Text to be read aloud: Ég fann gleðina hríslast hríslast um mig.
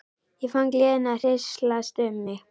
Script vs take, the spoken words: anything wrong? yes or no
yes